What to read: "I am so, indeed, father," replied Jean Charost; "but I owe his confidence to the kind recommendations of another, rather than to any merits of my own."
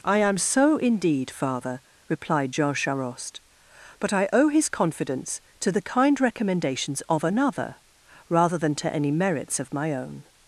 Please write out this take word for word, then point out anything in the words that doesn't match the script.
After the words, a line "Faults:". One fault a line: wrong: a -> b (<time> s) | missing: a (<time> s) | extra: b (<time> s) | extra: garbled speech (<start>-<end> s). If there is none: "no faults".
"I am so, indeed, father," replied Jean Charost; "but I owe his confidence to the kind recommendations of another, rather than to any merits of my own."
Faults:
no faults